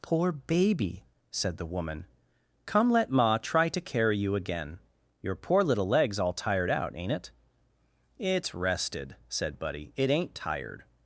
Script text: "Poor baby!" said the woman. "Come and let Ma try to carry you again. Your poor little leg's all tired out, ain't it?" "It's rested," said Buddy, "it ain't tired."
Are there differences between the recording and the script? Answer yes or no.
yes